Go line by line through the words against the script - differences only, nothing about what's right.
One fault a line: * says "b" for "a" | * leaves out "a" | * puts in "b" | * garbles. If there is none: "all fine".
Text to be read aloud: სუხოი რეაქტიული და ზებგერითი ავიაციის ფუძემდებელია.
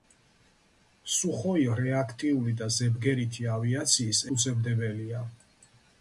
all fine